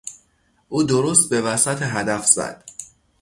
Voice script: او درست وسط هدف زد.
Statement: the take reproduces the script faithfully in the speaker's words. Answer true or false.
false